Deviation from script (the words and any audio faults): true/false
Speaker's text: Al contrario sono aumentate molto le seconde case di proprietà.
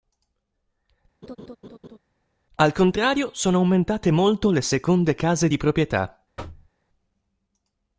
true